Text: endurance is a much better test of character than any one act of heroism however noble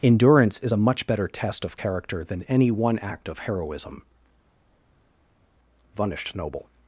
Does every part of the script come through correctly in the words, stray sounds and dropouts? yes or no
no